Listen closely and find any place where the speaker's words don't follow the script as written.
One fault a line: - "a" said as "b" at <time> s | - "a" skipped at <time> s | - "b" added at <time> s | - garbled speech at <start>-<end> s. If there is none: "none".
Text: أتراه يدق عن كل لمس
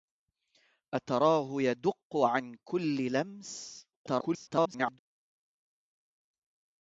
- garbled speech at 3.9-5.0 s